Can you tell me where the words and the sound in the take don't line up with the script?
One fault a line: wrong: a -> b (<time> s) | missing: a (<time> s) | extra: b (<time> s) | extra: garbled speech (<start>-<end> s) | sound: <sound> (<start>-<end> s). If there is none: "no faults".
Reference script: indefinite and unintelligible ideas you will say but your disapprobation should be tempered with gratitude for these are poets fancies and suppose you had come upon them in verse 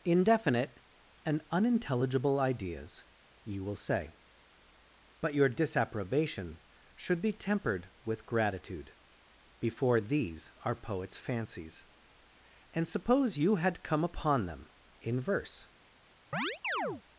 wrong: for -> before (9.6 s)
sound: chirp (16.3-17.0 s)